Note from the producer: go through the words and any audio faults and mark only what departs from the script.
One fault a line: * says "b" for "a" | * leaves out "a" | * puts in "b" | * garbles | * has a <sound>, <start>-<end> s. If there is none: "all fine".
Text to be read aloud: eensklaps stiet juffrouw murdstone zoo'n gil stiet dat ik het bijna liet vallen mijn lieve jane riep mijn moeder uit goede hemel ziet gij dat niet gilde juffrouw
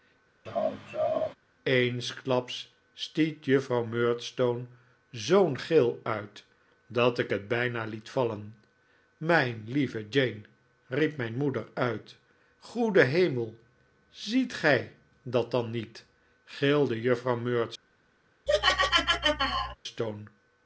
* has a laugh, 0.5-1.4 s
* says "uit" for "stiet"
* puts in "dan"
* has a laugh, 18.5-19.8 s